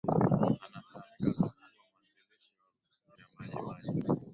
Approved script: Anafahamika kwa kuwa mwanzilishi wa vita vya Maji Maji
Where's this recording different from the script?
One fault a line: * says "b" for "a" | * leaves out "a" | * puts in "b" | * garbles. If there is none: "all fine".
* leaves out "vita"